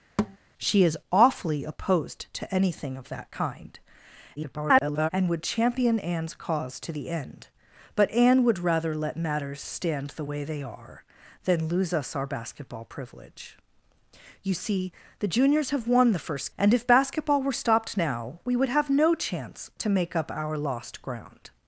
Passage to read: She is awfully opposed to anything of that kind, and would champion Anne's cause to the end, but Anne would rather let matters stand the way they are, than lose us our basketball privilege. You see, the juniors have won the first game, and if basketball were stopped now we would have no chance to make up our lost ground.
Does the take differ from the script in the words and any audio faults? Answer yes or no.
yes